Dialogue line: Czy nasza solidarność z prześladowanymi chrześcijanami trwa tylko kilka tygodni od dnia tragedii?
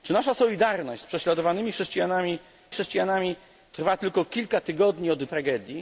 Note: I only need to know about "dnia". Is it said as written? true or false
false